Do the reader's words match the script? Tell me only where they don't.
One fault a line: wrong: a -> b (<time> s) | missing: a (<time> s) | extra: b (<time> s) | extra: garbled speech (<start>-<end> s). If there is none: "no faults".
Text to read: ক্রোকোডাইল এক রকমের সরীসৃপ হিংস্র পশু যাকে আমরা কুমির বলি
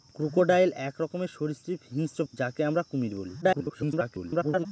missing: পশু (2.2 s)
extra: garbled speech (3.4-4.7 s)